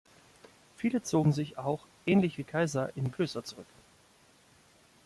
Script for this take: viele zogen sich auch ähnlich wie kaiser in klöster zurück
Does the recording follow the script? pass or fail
pass